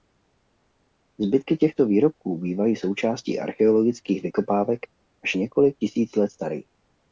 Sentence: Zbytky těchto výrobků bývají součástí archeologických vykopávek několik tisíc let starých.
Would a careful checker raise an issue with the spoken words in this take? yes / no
yes